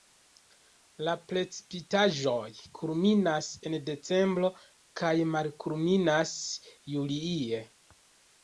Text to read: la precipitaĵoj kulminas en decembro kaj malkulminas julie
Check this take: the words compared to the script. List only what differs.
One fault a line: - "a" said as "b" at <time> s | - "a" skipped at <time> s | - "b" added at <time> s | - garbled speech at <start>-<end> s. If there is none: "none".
none